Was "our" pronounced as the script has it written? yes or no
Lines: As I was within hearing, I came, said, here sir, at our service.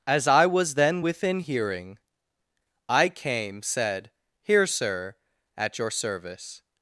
no